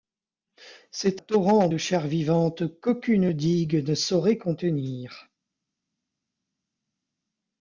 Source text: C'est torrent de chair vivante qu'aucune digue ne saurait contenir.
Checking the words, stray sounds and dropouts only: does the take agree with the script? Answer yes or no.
yes